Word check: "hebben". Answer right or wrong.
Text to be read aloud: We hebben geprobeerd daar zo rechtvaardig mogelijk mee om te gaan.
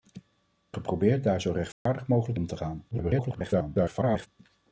wrong